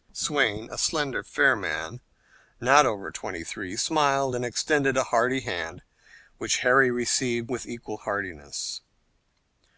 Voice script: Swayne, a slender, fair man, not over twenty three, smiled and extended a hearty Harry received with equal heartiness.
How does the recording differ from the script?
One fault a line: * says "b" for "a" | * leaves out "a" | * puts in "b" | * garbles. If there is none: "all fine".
* puts in "hand which"